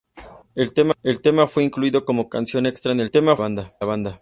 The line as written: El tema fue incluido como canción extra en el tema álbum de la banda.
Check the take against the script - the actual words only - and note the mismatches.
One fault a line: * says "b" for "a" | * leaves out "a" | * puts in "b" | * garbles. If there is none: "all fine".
all fine